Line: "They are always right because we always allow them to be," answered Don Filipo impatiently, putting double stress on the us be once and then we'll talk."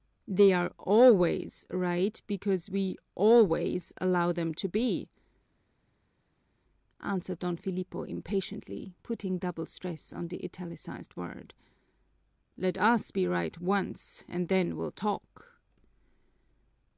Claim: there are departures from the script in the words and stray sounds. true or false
true